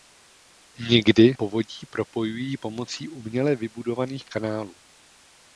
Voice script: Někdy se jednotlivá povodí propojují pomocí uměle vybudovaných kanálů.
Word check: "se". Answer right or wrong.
wrong